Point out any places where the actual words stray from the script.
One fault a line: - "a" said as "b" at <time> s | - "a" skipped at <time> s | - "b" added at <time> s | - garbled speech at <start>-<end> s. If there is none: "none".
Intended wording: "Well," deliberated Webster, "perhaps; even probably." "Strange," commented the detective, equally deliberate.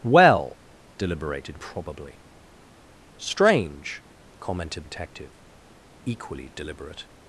- "Webster perhaps even" skipped at 1.6 s
- "the" skipped at 4.8 s